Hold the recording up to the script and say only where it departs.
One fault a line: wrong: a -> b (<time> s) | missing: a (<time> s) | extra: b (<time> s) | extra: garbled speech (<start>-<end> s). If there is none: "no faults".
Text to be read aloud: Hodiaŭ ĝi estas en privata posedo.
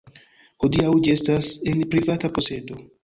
no faults